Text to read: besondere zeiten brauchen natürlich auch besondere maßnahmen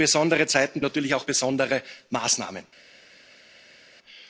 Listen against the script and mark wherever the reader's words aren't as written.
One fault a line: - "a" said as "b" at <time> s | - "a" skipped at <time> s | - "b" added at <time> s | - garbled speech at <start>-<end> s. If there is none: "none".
- "brauchen" skipped at 0.8 s